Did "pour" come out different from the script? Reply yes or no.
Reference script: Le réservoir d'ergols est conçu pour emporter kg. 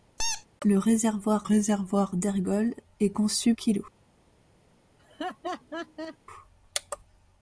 yes